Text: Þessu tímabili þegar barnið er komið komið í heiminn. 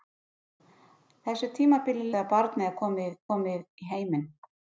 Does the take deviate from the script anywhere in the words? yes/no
no